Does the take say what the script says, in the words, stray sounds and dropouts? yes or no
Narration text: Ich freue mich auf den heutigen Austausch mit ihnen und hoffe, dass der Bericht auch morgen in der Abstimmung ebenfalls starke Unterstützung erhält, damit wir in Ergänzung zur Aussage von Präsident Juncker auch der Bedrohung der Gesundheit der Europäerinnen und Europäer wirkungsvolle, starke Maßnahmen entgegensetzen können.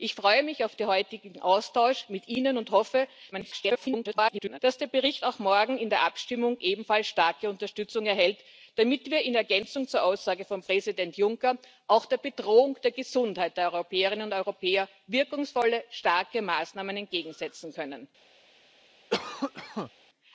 no